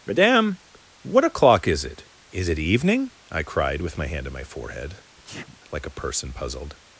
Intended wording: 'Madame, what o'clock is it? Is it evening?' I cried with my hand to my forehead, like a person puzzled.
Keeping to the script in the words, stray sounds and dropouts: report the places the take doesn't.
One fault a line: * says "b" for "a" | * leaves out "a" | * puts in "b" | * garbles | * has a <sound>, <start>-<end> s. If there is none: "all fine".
* says "on" for "to"
* has a sneeze, 5.2-5.6 s